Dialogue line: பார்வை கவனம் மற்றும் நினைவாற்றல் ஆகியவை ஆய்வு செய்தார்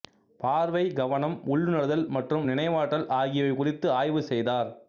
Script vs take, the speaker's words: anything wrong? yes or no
yes